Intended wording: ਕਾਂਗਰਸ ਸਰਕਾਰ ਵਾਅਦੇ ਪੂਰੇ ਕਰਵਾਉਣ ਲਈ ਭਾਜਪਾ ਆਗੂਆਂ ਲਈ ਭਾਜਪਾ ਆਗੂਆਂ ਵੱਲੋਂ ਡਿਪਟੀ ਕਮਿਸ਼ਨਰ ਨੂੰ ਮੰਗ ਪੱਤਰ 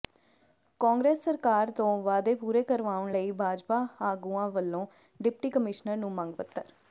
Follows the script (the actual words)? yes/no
no